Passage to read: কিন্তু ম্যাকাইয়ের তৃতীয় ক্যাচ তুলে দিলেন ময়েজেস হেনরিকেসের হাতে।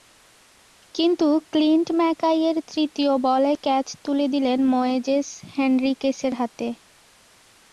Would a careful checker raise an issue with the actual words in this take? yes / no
yes